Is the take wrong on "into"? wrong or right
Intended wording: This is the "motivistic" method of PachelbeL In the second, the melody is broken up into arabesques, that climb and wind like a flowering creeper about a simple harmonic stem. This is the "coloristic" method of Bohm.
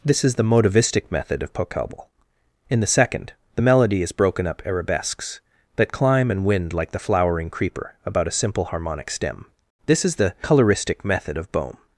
wrong